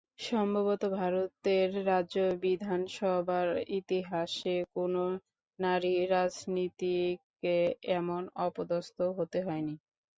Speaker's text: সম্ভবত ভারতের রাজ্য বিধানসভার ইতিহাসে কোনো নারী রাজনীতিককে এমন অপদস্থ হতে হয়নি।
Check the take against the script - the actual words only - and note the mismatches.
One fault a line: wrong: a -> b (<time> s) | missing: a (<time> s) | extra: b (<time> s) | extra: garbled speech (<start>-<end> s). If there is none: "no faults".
no faults